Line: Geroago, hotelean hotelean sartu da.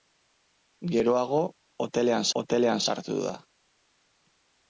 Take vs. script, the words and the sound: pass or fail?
pass